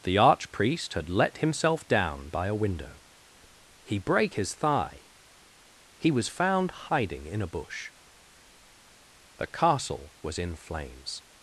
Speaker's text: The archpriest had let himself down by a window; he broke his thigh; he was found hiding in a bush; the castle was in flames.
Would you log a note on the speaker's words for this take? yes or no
yes